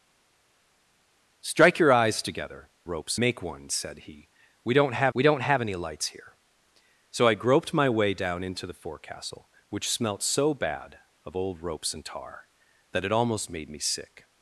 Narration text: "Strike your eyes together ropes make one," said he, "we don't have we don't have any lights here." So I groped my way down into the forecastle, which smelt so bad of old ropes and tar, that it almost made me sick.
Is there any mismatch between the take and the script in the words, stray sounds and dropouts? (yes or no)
no